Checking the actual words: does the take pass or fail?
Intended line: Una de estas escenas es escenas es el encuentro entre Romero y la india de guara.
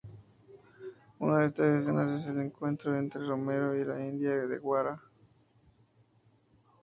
fail